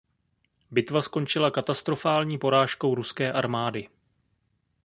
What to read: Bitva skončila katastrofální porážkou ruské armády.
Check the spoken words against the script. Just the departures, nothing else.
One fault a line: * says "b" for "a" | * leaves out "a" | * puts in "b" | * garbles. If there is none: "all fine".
all fine